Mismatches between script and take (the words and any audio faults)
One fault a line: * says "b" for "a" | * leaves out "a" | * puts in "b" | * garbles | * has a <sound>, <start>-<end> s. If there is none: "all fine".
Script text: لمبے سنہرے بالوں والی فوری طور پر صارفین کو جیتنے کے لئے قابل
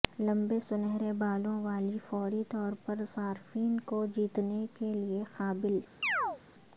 * has a chirp, 6.0-6.4 s